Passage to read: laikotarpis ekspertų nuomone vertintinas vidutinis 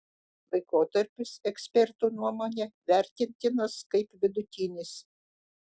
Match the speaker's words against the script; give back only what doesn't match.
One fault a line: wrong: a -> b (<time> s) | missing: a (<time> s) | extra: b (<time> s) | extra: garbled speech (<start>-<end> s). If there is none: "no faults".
extra: kaip (4.0 s)